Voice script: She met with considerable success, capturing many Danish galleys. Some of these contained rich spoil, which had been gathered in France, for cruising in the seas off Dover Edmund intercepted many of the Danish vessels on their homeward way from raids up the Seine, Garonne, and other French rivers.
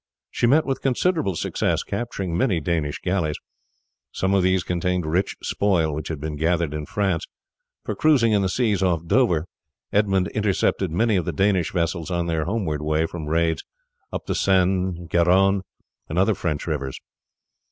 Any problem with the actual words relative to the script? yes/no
no